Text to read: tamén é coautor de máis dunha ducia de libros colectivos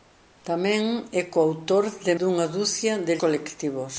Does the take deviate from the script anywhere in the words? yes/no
yes